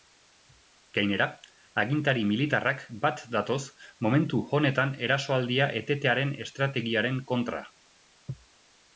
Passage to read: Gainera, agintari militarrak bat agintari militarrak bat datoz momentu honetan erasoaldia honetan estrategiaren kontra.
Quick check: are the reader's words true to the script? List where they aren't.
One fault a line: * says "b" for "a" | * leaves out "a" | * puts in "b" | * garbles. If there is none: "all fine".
* leaves out "agintari militarrak bat"
* says "etetearen" for "honetan"